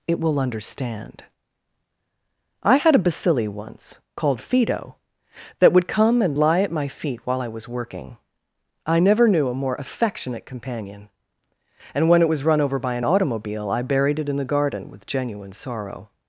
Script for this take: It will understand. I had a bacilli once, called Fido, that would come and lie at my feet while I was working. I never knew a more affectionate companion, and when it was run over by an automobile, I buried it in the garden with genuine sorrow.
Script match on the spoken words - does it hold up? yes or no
yes